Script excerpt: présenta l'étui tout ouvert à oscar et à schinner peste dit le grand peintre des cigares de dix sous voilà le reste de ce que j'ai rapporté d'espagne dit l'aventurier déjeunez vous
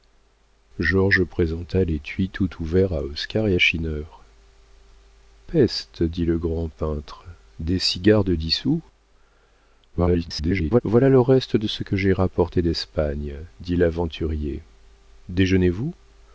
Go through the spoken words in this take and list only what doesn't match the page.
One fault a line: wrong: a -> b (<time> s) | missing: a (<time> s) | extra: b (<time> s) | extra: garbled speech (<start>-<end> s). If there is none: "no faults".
extra: garbled speech (9.9-10.8 s)